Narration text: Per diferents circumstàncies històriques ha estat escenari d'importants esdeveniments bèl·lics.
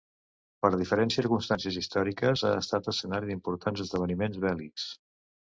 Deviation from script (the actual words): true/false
false